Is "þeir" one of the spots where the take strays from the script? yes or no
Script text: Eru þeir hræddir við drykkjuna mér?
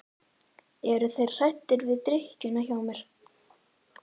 no